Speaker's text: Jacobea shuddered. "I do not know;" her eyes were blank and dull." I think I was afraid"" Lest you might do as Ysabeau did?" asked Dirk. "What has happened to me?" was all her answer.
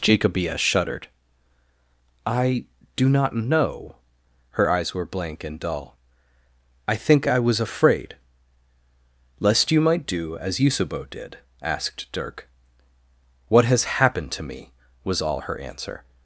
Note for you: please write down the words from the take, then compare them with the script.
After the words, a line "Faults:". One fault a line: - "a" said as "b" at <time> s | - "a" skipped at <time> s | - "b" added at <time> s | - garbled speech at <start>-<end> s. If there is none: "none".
Jacobea shuddered. "I do not know;" her eyes were blank and dull." I think I was afraid"" Lest you might do as Ysabeau did?" asked Dirk. "What has happened to me?" was all her answer.
Faults:
none